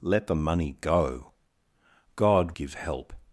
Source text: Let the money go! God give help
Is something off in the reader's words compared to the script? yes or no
no